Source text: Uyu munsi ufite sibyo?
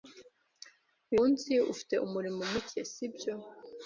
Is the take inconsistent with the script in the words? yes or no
yes